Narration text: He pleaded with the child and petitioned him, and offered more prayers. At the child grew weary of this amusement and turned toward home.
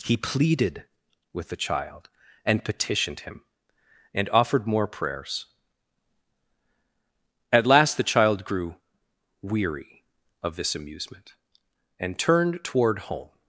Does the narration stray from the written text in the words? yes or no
yes